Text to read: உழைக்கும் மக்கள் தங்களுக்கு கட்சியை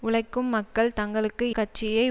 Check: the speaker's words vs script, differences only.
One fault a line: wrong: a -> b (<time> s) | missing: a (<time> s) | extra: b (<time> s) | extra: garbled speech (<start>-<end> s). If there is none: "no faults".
no faults